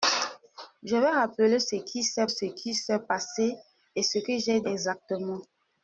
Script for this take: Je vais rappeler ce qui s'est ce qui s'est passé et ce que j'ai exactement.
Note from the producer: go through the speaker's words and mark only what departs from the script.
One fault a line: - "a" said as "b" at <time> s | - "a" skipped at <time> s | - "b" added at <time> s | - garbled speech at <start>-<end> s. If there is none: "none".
none